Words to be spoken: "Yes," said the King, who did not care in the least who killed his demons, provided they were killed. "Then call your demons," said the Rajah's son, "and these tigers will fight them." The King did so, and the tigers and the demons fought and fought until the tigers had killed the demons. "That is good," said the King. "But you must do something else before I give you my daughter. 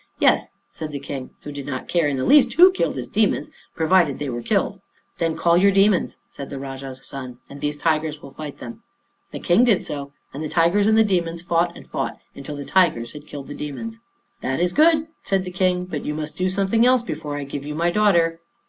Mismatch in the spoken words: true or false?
false